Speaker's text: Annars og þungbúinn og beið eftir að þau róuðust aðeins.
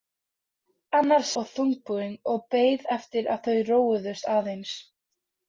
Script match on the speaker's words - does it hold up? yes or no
yes